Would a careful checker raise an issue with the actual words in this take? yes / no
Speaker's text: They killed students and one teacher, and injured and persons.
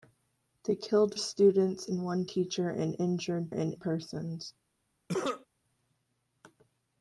no